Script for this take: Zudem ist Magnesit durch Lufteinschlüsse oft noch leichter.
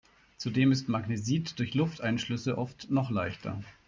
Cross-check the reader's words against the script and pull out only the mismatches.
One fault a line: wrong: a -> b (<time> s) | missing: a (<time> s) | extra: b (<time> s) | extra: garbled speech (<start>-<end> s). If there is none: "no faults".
no faults